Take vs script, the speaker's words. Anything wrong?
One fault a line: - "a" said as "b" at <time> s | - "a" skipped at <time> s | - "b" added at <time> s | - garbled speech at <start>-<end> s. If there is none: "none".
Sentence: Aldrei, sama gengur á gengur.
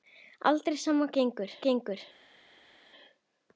none